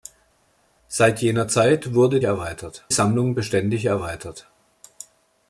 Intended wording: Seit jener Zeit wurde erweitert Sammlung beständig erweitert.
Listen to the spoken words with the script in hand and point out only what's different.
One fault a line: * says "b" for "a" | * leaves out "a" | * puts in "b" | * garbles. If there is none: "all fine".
all fine